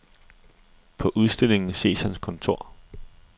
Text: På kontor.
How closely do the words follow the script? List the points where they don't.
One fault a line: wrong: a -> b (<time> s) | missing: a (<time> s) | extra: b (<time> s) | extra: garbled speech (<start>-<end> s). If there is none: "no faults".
extra: udstillingen ses hans (1.1 s)